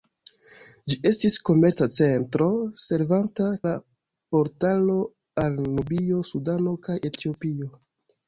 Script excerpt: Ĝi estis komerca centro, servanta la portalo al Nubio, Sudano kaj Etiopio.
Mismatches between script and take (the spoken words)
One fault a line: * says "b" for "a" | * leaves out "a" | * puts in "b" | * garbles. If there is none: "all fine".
all fine